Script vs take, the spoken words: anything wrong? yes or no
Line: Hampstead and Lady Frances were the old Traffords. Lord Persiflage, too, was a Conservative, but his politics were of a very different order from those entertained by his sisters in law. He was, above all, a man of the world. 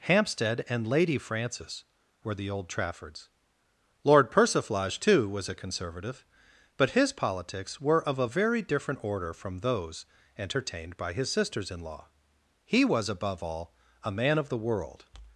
no